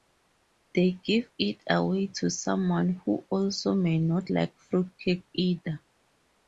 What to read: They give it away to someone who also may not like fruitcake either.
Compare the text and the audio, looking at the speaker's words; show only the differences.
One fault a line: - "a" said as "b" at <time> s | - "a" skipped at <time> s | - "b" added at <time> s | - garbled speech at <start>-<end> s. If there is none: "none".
none